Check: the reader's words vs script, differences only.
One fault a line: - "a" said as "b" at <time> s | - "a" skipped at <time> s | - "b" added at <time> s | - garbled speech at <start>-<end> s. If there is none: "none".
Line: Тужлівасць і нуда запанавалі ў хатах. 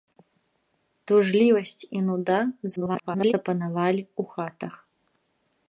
- garbled speech at 2.8-3.3 s